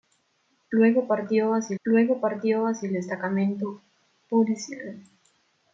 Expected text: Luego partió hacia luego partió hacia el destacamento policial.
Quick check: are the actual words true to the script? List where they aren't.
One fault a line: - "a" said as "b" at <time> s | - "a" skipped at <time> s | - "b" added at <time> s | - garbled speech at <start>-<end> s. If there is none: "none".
none